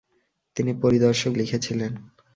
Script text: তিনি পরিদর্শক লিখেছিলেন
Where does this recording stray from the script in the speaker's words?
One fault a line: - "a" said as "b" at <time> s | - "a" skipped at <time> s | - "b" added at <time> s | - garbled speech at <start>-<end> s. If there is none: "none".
none